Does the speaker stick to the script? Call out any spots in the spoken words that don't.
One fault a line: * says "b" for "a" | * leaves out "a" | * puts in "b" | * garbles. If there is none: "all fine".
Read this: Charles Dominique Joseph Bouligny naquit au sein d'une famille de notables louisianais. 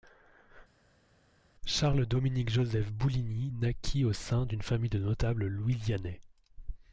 all fine